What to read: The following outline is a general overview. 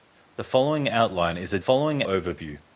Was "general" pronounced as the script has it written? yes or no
no